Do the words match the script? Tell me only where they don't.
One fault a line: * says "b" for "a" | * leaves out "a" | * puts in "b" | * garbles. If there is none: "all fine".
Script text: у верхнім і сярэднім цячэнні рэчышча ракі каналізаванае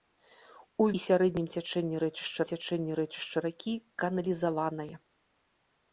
* leaves out "верхнім"
* puts in "цячэнні рэчышча"